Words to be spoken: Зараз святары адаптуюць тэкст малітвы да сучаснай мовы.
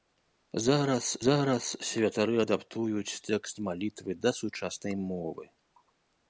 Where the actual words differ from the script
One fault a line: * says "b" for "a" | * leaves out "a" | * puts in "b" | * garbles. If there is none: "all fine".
* puts in "зараз"